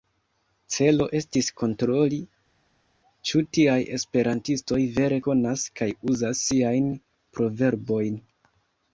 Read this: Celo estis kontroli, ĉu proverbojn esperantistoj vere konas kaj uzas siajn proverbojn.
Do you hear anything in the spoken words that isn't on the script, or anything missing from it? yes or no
yes